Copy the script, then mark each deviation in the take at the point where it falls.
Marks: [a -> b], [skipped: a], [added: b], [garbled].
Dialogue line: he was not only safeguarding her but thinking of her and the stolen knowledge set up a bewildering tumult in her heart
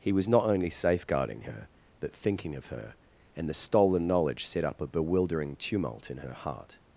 he was not only safeguarding her but thinking of her and the stolen knowledge set up a bewildering tumult in her heart